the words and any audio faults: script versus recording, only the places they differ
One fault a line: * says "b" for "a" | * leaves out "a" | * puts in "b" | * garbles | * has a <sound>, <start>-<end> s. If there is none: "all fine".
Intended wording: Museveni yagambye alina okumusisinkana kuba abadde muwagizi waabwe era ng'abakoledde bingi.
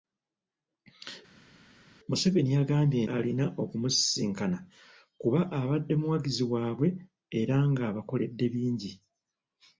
all fine